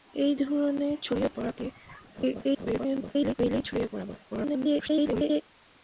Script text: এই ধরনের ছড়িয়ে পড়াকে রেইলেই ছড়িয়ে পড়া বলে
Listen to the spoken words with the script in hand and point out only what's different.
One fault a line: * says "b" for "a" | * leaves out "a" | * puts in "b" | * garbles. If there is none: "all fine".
* garbles
* garbles